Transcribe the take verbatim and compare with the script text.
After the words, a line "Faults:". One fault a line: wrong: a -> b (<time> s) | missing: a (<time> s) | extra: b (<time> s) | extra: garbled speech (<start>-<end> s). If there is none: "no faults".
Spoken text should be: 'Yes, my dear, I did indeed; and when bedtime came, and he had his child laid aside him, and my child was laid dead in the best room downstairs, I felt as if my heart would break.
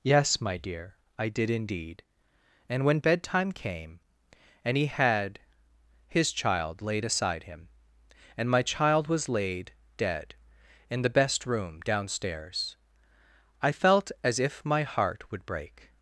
'Yes, my dear, I did indeed; and when bedtime came, and he had his child laid aside him, and my child was laid dead in the best room downstairs, I felt as if my heart would break.
Faults:
no faults